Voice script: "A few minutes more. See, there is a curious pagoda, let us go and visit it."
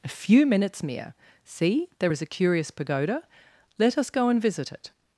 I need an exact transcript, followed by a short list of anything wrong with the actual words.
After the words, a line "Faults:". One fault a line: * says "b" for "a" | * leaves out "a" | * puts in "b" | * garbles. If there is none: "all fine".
"A few minutes mere. See, there is a curious pagoda, let us go and visit it."
Faults:
* says "mere" for "more"